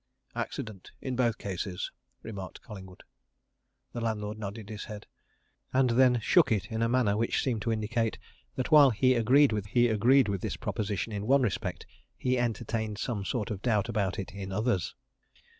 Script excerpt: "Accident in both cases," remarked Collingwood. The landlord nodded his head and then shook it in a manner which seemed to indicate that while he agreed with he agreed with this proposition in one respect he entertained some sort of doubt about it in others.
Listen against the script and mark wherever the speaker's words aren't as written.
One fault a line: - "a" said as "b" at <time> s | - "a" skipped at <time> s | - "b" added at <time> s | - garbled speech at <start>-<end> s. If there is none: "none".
none